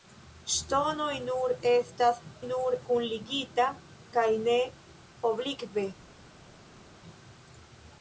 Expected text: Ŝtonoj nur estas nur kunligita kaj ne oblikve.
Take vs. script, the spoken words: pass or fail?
pass